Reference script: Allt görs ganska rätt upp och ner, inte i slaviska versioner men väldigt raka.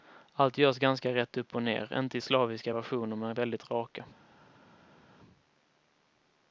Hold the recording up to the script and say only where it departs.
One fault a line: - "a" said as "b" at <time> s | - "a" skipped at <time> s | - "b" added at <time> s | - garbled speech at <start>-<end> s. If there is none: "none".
none